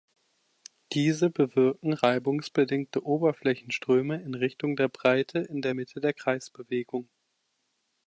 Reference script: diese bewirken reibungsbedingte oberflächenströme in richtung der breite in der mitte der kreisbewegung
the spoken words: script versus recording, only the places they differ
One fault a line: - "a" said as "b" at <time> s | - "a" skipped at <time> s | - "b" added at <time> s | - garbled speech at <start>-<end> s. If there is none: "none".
none